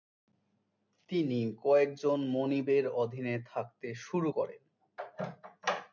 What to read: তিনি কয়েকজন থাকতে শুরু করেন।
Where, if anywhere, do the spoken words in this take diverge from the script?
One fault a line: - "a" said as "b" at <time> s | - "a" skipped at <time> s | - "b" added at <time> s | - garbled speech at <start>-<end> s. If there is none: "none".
- "মনিবের অধীনে" added at 2.3 s